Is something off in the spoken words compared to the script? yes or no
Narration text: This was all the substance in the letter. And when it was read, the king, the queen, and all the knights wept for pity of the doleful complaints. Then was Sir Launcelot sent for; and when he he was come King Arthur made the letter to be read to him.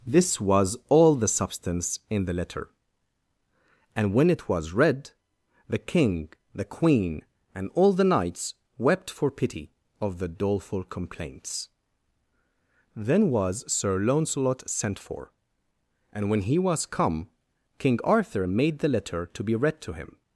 yes